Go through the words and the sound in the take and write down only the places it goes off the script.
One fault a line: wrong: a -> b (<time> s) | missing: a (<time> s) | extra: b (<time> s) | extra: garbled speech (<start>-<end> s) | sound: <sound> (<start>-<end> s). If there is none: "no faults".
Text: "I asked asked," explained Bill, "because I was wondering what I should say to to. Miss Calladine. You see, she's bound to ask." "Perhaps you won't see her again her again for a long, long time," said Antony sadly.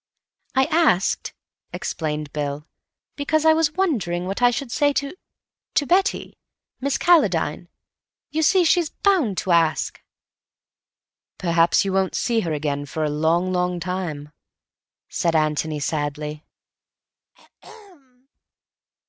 missing: asked (1.3 s)
extra: Betty (5.9 s)
missing: her again (12.8 s)
sound: throat clearing (17.3-18.3 s)